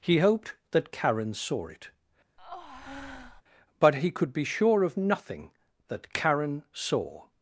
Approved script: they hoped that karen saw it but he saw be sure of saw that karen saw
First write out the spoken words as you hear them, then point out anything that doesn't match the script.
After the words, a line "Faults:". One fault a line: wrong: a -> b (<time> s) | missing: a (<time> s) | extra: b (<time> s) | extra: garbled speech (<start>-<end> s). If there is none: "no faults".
he hoped that karen saw it but he could be sure of nothing that karen saw
Faults:
wrong: they -> he (0.0 s)
wrong: saw -> could (4.1 s)
wrong: saw -> nothing (5.0 s)